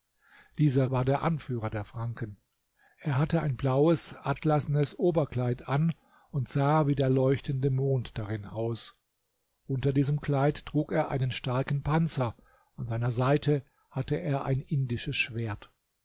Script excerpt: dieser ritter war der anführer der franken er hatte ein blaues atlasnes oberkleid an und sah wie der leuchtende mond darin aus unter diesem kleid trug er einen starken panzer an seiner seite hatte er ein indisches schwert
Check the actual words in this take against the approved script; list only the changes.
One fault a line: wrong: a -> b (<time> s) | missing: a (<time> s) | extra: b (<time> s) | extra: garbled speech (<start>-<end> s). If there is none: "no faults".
missing: ritter (0.9 s)